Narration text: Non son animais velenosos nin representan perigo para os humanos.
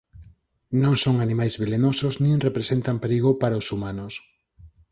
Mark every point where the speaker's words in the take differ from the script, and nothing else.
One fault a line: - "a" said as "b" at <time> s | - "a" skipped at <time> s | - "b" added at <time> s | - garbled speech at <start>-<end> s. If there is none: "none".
none